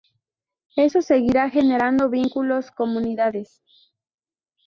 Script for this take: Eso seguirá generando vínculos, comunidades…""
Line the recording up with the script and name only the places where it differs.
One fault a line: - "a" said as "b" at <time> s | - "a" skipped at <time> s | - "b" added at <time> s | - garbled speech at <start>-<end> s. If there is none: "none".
none